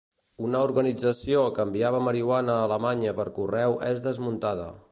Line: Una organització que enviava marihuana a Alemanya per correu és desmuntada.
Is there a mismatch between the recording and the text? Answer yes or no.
no